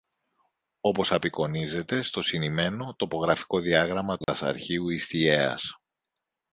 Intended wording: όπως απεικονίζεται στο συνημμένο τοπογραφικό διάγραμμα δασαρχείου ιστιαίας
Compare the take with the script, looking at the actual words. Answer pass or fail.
pass